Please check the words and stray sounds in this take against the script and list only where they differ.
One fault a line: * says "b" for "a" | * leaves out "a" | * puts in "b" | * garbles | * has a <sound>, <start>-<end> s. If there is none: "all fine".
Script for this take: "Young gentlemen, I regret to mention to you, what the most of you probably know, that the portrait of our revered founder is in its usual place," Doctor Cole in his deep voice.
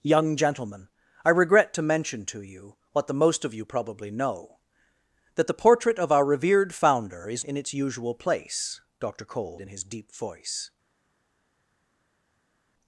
all fine